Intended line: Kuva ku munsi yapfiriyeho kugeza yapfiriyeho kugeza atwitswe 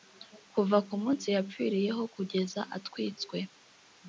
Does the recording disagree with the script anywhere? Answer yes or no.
yes